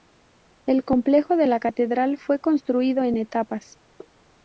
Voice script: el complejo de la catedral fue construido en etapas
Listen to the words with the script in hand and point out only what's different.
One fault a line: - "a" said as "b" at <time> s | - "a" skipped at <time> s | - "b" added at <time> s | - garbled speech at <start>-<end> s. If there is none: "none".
none